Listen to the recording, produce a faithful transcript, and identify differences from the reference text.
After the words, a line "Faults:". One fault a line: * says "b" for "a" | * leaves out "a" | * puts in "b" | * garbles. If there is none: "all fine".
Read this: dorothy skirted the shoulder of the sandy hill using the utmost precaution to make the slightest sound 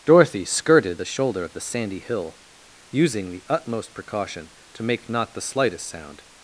dorothy skirted the shoulder of the sandy hill using the utmost precaution to make not the slightest sound
Faults:
* puts in "not"